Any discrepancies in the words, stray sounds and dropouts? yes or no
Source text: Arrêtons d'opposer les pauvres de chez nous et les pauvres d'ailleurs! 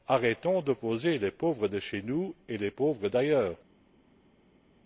no